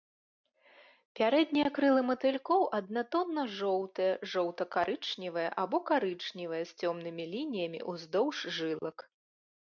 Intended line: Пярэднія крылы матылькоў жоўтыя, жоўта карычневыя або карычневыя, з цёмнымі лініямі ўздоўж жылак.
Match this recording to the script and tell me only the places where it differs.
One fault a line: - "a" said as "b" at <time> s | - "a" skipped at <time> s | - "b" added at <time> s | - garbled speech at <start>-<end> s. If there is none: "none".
- "аднатонна" added at 2.8 s